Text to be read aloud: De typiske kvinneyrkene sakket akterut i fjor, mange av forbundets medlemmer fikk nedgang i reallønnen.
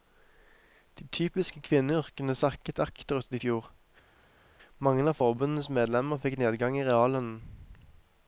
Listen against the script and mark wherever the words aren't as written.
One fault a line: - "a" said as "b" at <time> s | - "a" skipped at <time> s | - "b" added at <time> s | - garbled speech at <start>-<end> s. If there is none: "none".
none